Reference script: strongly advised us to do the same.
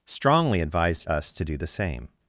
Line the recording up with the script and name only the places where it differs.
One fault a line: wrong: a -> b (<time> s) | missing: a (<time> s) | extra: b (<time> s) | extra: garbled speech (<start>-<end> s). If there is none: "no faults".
no faults